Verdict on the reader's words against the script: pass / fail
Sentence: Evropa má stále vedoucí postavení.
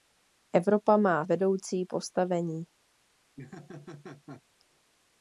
fail